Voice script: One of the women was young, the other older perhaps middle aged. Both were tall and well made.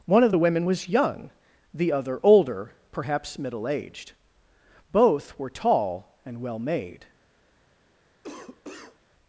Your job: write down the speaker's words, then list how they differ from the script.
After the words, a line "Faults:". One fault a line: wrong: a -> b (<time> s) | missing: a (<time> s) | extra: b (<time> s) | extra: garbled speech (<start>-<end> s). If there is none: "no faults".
One of the women was young, the other older perhaps middle aged. Both were tall and well made.
Faults:
no faults